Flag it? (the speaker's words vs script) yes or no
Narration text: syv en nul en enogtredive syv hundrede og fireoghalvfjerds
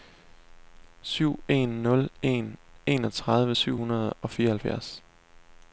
no